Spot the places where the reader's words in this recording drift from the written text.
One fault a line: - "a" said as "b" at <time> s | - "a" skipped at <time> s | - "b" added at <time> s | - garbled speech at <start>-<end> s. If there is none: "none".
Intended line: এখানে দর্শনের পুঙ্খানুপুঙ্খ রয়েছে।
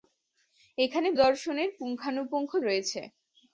none